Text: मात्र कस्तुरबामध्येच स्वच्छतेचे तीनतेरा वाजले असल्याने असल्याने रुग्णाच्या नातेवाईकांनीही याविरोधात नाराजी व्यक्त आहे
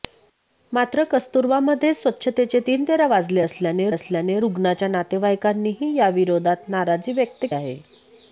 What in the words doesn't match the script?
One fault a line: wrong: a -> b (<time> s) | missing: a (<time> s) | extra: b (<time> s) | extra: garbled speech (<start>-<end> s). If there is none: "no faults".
no faults